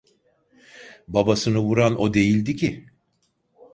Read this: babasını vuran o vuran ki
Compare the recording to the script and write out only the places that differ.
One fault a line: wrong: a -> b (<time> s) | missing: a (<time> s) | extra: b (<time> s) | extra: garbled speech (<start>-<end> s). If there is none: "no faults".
wrong: vuran -> değildi (2.1 s)